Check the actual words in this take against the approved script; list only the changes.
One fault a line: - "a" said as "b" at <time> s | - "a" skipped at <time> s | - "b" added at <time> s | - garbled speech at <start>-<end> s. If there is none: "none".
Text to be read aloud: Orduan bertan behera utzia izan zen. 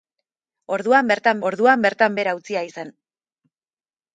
- "orduan bertan" added at 1.5 s
- "izan" skipped at 2.7 s